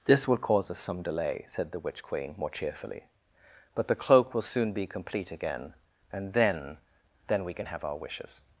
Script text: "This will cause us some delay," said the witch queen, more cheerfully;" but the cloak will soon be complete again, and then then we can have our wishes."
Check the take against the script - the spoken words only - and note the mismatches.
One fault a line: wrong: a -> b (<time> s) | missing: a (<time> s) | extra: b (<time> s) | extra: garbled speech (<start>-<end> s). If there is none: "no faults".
no faults